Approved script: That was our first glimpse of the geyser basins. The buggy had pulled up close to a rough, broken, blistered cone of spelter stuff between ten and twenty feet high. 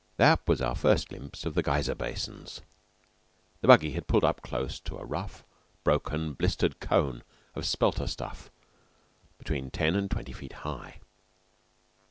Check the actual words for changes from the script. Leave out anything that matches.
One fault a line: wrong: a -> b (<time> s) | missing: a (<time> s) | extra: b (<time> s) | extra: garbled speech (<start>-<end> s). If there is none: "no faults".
no faults